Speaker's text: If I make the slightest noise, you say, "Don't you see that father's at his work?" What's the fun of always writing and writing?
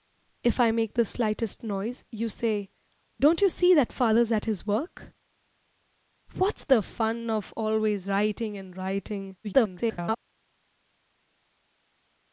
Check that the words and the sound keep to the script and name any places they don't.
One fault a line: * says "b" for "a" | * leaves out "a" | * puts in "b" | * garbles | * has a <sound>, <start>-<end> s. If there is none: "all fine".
* garbles